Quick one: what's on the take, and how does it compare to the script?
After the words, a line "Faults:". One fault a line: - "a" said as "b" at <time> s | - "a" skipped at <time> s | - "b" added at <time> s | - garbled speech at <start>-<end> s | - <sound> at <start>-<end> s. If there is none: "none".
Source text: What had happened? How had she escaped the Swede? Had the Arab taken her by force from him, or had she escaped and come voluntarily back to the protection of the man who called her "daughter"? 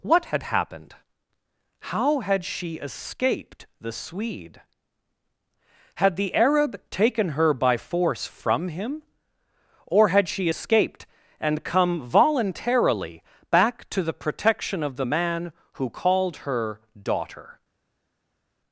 What had happened? How had she escaped the Swede? Had the Arab taken her by force from him, or had she escaped and come voluntarily back to the protection of the man who called her "daughter"?
Faults:
none